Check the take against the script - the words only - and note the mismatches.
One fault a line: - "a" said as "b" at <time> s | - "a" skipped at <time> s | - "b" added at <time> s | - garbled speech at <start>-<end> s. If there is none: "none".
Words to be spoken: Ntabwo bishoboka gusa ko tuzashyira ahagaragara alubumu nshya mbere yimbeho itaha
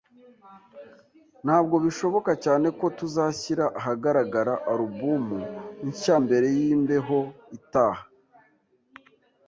- "gusa" said as "cyane" at 2.4 s